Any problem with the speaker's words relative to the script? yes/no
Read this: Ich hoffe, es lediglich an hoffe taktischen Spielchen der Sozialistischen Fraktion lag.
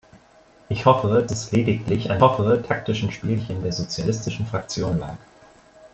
no